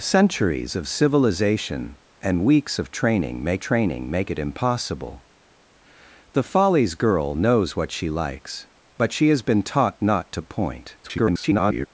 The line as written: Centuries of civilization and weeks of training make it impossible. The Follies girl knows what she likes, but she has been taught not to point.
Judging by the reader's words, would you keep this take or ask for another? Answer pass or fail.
fail